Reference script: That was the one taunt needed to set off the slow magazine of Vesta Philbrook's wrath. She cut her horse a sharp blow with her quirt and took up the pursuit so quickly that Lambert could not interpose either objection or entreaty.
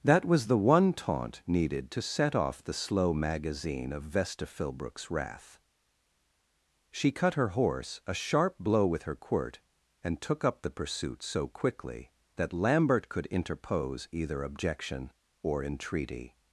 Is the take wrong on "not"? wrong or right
wrong